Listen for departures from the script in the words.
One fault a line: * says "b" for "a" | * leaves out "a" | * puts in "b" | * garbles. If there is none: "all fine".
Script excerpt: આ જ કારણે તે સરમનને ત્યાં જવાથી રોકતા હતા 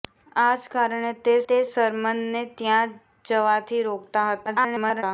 * puts in "તે"
* garbles